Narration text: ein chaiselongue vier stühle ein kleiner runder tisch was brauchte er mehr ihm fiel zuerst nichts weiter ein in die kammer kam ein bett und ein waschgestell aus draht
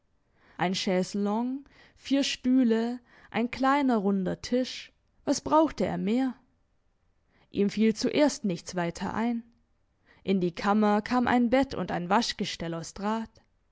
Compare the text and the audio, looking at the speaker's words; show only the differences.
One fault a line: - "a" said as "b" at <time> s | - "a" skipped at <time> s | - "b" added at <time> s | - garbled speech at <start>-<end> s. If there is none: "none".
none